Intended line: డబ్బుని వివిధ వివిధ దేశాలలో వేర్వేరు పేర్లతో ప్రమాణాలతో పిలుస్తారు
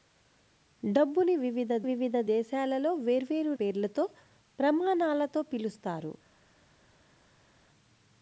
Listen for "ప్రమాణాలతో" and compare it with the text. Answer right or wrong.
right